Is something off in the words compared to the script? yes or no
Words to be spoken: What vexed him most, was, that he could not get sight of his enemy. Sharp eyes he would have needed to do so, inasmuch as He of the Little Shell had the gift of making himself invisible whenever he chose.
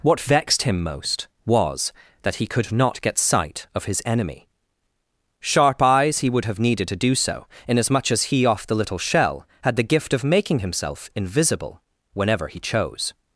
yes